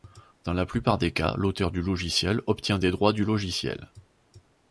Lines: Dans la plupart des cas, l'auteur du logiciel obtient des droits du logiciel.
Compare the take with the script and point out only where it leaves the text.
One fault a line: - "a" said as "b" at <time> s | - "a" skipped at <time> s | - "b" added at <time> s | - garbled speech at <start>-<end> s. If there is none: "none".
none